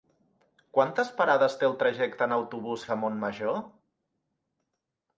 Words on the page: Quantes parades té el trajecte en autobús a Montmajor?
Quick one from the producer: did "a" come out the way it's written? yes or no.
yes